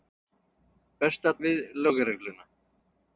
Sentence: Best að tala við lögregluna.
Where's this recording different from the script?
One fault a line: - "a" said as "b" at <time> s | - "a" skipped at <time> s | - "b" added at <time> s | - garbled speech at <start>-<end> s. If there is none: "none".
- "tala" skipped at 1.4 s